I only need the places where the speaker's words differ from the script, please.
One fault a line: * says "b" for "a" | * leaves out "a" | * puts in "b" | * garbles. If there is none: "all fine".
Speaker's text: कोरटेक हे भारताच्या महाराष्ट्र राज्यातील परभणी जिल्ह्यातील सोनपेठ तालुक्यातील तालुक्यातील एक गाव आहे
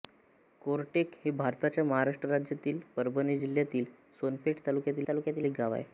all fine